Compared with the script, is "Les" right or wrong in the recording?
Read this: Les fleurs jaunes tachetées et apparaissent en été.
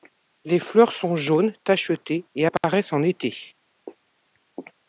right